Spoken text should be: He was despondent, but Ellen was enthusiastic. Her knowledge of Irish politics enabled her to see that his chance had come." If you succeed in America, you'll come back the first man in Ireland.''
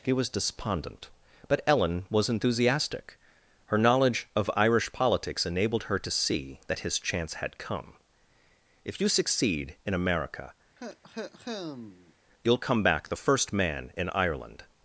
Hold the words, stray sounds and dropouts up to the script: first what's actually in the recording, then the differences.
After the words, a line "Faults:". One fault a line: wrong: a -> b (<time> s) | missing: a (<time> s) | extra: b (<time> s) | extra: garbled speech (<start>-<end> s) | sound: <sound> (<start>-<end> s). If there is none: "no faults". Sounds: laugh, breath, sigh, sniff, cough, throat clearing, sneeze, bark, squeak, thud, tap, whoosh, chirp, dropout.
He was despondent, but Ellen was enthusiastic. Her knowledge of Irish politics enabled her to see that his chance had come." If you succeed in America, you'll come back the first man in Ireland.''
Faults:
sound: cough (10.8-12.1 s)